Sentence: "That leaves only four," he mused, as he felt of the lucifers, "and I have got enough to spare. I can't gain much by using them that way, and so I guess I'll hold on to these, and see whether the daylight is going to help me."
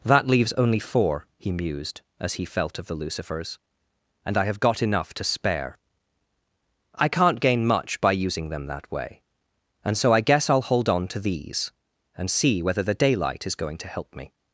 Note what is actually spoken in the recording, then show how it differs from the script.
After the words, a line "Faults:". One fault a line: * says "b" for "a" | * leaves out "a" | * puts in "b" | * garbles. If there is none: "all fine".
"That leaves only four," he mused, as he felt of the lucifers, "and I have got enough to spare. I can't gain much by using them that way, and so I guess I'll hold on to these, and see whether the daylight is going to help me."
Faults:
all fine